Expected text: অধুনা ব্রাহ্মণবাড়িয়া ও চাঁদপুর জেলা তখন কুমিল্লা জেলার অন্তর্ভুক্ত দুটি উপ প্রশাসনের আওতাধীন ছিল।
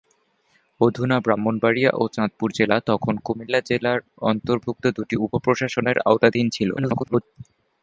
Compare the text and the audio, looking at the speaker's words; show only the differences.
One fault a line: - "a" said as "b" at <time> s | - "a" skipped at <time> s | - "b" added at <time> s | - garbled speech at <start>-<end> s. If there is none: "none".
- garbled speech at 6.8-7.2 s